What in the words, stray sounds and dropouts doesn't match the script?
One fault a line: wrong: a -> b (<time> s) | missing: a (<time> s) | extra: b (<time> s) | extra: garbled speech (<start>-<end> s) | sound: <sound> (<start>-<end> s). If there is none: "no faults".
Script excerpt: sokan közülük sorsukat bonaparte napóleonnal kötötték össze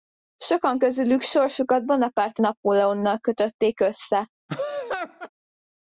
sound: laugh (4.5-5.3 s)